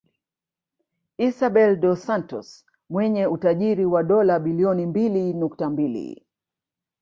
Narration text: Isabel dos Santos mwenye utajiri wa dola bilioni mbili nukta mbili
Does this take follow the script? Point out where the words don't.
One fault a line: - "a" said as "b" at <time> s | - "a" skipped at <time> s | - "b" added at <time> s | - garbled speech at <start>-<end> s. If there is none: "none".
none